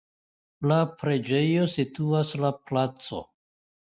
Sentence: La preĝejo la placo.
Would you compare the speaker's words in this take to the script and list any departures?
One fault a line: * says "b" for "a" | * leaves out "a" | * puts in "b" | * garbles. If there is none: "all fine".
* puts in "situas"